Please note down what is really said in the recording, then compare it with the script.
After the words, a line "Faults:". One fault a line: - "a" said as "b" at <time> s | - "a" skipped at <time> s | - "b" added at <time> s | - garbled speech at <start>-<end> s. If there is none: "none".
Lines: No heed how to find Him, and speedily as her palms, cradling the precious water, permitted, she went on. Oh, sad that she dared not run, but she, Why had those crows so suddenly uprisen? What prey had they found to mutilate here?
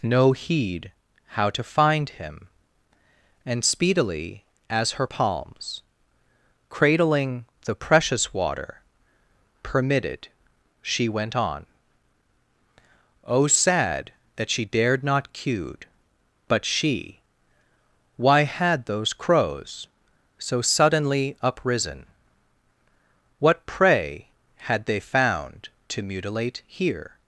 No heed how to find Him, and speedily as her palms, cradling the precious water, permitted, she went on. Oh, sad that she dared not cued, but she, Why had those crows so suddenly uprisen? What prey had they found to mutilate here?
Faults:
- "run" said as "cued" at 15.3 s